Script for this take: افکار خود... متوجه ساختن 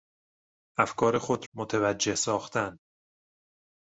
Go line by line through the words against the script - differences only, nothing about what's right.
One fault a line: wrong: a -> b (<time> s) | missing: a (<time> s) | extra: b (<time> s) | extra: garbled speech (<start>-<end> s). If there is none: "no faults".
no faults